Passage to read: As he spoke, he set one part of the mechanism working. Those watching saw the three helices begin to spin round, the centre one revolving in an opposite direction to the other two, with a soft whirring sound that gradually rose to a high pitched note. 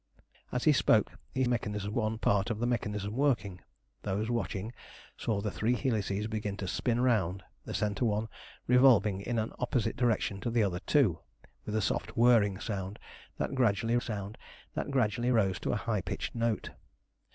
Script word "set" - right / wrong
wrong